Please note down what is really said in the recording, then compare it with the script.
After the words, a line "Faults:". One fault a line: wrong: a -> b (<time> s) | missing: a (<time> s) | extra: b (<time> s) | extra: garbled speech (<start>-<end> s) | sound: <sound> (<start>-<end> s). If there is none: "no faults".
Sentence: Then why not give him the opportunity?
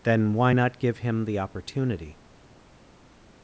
Then why not give him the opportunity?
Faults:
no faults